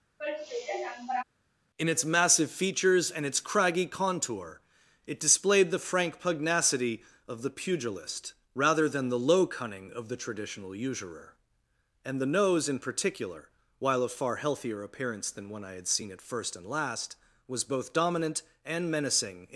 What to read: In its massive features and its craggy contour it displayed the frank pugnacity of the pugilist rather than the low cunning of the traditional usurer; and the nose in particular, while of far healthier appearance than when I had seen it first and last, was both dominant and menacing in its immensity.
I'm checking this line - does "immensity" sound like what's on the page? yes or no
no